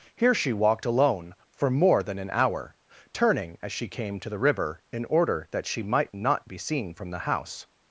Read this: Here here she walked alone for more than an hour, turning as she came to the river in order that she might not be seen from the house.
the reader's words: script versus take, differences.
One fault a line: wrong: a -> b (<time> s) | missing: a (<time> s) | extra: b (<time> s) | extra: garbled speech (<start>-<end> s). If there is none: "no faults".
missing: here (0.3 s)